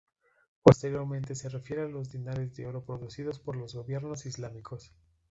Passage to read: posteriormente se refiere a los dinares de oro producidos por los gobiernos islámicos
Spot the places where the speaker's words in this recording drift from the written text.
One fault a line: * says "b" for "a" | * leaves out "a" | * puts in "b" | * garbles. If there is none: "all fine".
all fine